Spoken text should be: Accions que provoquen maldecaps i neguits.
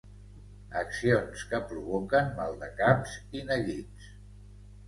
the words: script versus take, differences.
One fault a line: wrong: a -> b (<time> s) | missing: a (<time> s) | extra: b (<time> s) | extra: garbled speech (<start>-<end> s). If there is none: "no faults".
no faults